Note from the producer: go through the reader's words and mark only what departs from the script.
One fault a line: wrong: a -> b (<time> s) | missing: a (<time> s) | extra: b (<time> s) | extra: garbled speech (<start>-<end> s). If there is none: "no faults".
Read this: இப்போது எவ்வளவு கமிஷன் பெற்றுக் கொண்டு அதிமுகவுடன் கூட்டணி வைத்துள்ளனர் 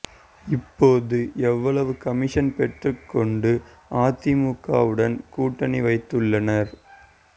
no faults